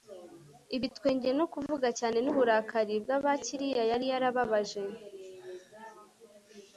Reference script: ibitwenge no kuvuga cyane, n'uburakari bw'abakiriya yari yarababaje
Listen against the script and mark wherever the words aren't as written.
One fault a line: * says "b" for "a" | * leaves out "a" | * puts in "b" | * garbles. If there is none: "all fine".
all fine